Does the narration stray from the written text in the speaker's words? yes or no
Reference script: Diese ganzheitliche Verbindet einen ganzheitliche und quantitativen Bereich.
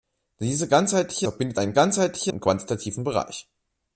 no